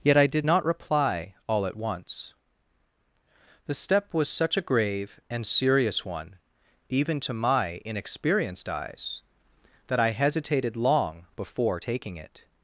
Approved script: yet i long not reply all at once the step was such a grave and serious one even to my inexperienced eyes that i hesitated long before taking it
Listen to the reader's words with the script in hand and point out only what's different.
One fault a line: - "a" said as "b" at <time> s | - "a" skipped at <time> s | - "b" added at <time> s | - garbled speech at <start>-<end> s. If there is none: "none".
- "long" said as "did" at 0.3 s